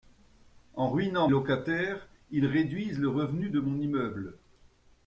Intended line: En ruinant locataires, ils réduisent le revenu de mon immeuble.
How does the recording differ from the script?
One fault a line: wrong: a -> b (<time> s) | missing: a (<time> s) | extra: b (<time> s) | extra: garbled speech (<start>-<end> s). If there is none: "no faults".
no faults